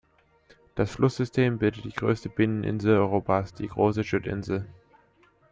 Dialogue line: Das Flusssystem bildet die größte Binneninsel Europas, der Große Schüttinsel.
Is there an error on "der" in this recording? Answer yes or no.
yes